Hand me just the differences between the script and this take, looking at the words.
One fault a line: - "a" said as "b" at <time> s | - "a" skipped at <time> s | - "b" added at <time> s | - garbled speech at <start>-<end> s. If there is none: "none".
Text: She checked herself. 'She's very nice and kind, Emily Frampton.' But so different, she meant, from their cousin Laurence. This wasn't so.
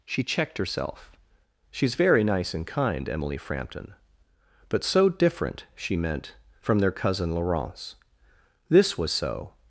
- "wasn't" said as "was" at 9.0 s